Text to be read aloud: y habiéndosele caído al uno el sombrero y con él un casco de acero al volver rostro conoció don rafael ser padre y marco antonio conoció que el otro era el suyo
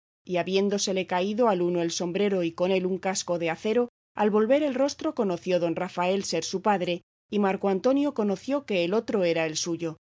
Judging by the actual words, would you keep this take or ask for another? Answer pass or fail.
fail